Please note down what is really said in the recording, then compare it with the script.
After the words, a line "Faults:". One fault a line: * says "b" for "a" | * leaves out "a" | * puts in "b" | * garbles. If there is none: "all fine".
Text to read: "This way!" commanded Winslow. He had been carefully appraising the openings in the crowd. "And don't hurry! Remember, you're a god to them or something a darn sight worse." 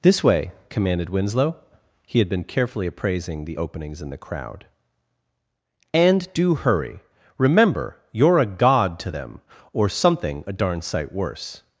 "This way!" commanded Winslow. He had been carefully appraising the openings in the crowd. "And do hurry! Remember, you're a god to them or something a darn sight worse."
Faults:
* says "do" for "don't"